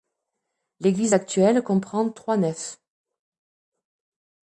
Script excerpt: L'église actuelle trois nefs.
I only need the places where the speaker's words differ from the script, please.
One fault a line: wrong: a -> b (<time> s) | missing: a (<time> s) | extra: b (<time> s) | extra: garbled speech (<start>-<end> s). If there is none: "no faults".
extra: comprend (1.6 s)